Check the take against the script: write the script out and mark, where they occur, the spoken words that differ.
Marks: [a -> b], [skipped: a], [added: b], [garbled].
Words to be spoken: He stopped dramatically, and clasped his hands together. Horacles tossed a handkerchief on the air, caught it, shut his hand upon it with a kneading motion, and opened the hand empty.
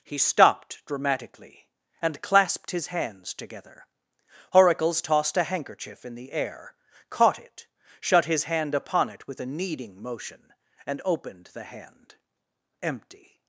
He stopped dramatically, and clasped his hands together. Horacles tossed a handkerchief [on -> in] the air, caught it, shut his hand upon it with a kneading motion, and opened the hand empty.